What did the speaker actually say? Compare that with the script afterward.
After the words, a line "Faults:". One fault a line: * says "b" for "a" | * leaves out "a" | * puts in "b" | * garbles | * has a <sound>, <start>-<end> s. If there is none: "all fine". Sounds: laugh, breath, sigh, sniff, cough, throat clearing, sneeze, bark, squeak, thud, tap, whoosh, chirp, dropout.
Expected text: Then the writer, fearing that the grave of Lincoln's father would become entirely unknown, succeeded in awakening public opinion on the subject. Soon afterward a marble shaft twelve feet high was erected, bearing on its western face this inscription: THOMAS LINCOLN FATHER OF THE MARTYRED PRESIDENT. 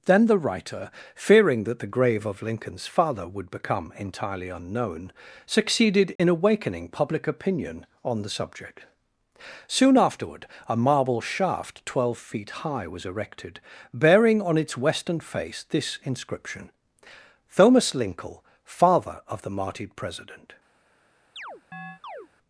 Then the writer, fearing that the grave of Lincoln's father would become entirely unknown, succeeded in awakening public opinion on the subject. Soon afterward a marble shaft twelve feet high was erected, bearing on its western face this inscription: THOMAS LINCOLN FATHER OF THE MARTYRED PRESIDENT.
Faults:
* has a dropout, 6.2-6.2 s
* has a chirp, 21.4-22.3 s